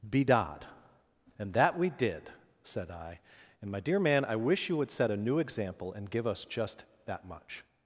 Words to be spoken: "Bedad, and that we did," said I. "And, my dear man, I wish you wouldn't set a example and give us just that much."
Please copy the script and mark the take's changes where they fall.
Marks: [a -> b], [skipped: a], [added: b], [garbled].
"Bedad, and that we did," said I. "And, my dear man, I wish you [wouldn't -> would] set a [added: new] example and give us just that much."